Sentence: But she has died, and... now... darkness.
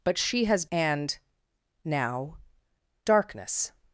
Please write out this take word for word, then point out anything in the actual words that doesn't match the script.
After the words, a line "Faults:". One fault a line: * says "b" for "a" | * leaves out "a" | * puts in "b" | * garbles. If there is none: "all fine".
But she has and... now... darkness.
Faults:
* leaves out "died"